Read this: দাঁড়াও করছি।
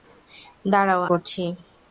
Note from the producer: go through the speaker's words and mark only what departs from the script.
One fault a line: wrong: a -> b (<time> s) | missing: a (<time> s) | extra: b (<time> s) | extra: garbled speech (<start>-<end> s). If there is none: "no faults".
no faults